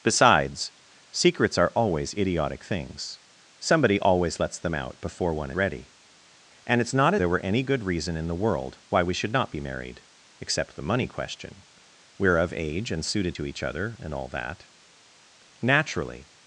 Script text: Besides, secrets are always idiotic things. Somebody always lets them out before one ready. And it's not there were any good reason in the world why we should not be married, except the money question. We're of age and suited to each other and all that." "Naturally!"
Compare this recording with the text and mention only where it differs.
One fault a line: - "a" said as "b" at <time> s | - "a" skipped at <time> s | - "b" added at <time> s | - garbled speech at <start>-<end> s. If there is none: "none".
none